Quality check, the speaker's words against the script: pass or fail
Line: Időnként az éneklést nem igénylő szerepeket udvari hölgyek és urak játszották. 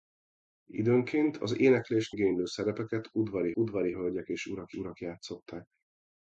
fail